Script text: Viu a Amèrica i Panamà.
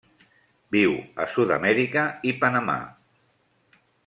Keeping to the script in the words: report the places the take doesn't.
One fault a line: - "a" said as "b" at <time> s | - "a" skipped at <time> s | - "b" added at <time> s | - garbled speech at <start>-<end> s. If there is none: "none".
- "Sud" added at 1.4 s